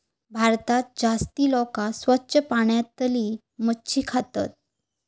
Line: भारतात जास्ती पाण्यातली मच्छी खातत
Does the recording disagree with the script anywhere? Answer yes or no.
yes